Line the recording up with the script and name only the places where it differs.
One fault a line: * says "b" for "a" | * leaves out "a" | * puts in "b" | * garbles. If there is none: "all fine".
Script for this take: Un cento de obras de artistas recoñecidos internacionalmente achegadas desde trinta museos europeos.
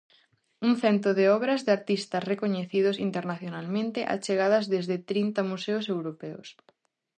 all fine